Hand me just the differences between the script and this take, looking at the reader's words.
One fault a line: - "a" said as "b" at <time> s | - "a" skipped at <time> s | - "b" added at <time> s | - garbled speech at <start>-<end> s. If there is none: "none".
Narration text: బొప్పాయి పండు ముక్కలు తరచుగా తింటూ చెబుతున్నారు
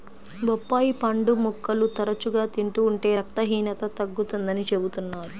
- "ఉంటే రక్తహీనత తగ్గుతుందని" added at 2.9 s